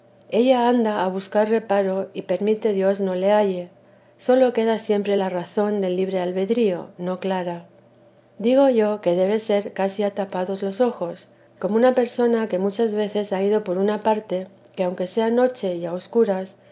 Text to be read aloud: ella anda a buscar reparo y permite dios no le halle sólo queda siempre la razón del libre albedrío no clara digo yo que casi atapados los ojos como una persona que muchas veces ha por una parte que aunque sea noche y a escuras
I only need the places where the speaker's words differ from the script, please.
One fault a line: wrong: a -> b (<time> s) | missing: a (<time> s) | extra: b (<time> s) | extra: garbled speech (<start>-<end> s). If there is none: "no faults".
extra: debe ser (9.2 s)
extra: ido (13.4 s)